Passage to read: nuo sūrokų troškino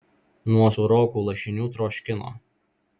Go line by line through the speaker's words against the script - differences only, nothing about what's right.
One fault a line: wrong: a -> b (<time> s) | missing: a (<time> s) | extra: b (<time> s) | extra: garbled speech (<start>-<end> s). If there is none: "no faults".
extra: lašinių (1.3 s)